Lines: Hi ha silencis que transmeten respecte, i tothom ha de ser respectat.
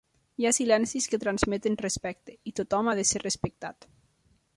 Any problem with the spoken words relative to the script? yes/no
no